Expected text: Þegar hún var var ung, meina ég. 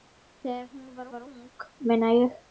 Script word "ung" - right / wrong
right